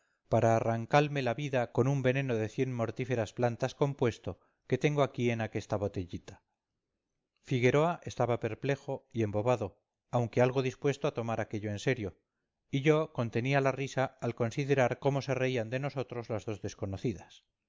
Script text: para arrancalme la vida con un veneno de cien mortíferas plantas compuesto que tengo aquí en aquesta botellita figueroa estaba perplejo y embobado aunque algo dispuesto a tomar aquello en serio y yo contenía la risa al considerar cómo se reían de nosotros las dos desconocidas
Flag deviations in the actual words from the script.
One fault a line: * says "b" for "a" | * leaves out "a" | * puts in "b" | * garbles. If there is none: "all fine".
all fine